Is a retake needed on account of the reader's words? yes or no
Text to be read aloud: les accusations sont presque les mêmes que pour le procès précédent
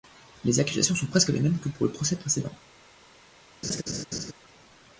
no